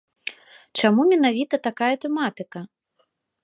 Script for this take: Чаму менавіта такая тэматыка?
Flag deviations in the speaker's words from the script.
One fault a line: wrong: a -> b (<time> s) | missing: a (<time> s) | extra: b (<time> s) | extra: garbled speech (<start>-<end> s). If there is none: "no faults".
no faults